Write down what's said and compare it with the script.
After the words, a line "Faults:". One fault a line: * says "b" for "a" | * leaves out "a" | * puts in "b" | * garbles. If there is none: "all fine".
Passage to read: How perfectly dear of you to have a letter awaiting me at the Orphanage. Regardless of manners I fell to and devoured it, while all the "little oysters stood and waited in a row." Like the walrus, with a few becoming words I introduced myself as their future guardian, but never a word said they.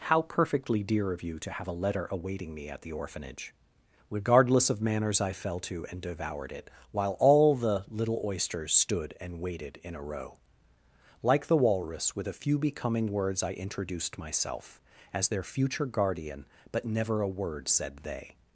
How perfectly dear of you to have a letter awaiting me at the Orphanage. Regardless of manners I fell to and devoured it, while all the "little oysters stood and waited in a row." Like the walrus, with a few becoming words I introduced myself as their future guardian, but never a word said they.
Faults:
all fine